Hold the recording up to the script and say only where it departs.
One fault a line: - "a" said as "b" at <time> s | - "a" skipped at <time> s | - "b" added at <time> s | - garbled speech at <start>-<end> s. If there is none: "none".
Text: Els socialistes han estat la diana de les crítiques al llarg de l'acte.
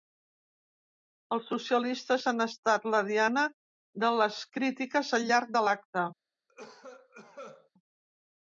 none